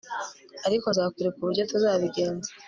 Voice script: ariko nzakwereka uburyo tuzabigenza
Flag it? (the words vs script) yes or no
no